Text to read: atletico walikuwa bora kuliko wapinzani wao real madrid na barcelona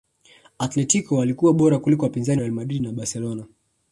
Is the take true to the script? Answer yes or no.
no